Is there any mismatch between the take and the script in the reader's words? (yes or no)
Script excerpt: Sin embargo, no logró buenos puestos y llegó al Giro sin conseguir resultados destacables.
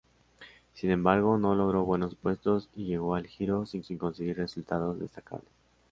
yes